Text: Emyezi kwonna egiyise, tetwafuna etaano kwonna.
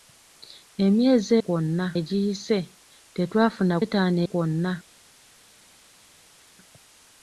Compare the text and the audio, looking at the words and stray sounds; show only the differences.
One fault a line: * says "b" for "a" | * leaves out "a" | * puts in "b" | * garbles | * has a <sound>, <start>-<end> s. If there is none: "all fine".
all fine